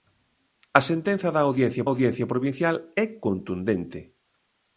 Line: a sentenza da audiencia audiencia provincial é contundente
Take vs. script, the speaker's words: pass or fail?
pass